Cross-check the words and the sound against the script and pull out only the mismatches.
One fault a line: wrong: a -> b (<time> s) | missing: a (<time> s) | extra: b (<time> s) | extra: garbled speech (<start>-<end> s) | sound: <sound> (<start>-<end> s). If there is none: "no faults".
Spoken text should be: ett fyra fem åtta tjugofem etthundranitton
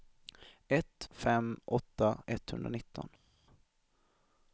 missing: fyra (1.1 s)
missing: tjugofem (2.2 s)